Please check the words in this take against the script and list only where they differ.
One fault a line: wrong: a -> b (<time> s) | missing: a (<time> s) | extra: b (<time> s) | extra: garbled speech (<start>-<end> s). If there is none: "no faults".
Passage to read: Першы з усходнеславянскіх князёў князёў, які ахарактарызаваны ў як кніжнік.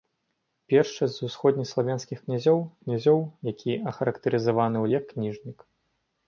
no faults